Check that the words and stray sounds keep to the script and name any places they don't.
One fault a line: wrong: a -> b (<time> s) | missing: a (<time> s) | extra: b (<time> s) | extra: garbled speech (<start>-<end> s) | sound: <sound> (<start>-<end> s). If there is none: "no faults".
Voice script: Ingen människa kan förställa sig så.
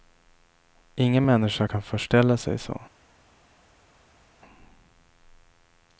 no faults